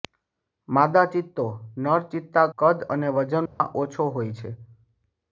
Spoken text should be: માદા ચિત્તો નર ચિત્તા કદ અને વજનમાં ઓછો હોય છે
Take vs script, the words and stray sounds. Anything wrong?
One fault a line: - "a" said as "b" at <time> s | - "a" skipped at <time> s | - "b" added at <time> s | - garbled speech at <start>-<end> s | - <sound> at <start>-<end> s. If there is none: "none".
- dropout at 3.5-3.6 s